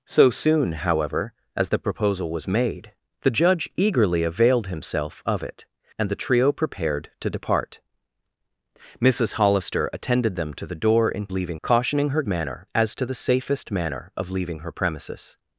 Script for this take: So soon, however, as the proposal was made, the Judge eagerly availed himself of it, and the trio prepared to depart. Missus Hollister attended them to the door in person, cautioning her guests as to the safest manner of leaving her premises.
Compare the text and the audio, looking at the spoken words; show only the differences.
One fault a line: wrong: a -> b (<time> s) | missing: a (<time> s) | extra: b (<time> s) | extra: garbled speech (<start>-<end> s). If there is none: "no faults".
wrong: person -> leaving (11.3 s)
wrong: guests -> manner (12.3 s)